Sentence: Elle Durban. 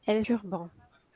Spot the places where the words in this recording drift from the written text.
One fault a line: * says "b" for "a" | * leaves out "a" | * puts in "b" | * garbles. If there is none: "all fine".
all fine